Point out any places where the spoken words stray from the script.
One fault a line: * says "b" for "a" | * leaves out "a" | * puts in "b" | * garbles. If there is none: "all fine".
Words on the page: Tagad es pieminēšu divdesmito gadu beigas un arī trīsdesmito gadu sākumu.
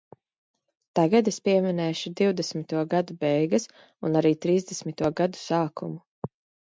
all fine